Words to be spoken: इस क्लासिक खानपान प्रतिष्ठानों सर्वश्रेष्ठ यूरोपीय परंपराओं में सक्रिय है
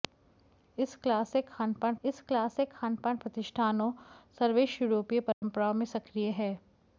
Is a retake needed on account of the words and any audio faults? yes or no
yes